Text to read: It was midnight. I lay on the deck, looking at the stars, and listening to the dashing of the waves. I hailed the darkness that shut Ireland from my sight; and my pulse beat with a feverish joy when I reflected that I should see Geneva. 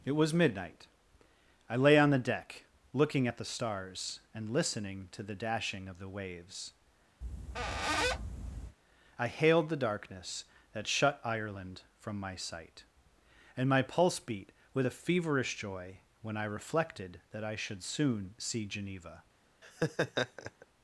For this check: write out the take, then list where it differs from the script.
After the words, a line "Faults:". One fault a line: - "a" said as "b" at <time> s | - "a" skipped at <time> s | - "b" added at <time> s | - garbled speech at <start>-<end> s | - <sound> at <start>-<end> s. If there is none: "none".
It was midnight. I lay on the deck, looking at the stars, and listening to the dashing of the waves. I hailed the darkness that shut Ireland from my sight; and my pulse beat with a feverish joy when I reflected that I should soon see Geneva.
Faults:
- squeak at 7.2-8.8 s
- "soon" added at 17.8 s
- laugh at 19.6-20.7 s